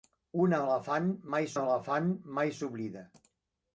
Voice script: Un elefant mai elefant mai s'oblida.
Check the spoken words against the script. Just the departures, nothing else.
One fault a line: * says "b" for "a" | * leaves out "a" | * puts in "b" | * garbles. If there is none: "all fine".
all fine